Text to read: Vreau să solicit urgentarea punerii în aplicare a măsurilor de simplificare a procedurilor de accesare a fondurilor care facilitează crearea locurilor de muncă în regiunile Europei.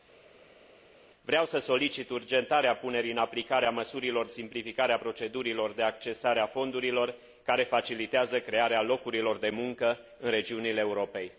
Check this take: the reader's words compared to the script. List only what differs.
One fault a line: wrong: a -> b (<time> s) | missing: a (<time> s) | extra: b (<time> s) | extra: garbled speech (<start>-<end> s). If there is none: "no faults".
missing: de (4.3 s)